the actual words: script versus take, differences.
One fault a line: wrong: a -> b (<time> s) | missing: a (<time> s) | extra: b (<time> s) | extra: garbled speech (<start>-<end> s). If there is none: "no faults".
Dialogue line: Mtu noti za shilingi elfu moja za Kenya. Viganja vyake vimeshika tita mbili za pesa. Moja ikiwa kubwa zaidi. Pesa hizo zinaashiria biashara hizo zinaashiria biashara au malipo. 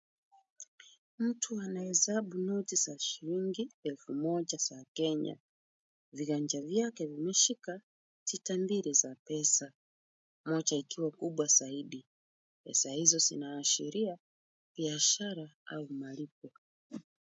extra: anahesabu (1.6 s)
missing: hizo zinaashiria biashara (15.5 s)